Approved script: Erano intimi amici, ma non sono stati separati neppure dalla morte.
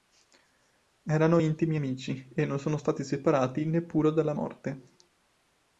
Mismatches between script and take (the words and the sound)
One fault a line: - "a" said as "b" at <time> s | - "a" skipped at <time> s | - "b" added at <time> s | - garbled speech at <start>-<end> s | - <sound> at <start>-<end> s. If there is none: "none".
- "ma" said as "e" at 2.3 s